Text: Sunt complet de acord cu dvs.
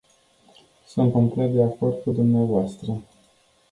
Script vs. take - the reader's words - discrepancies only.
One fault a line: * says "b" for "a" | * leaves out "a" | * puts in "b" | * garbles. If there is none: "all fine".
all fine